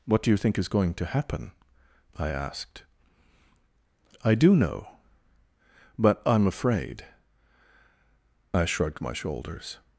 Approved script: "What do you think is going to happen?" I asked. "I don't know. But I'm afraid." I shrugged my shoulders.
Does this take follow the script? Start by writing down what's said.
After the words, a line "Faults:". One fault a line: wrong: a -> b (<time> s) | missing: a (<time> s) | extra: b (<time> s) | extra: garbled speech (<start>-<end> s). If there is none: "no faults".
"What do you think is going to happen?" I asked. "I do know. But I'm afraid." I shrugged my shoulders.
Faults:
wrong: don't -> do (4.3 s)